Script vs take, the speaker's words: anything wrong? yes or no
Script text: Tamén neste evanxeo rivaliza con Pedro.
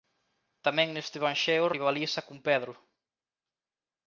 no